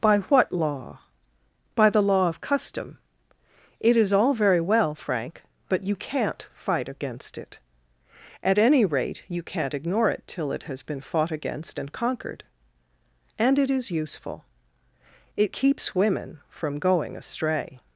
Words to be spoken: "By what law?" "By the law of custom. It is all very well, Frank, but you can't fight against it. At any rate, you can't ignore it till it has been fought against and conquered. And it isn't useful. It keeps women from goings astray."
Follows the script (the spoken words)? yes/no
no